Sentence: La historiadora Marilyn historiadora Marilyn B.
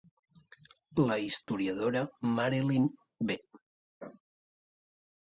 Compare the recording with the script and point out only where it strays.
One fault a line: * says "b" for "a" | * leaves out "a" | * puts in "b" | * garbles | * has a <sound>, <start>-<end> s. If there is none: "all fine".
* has a dropout, 1.4-1.5 s
* leaves out "historiadora Marilyn"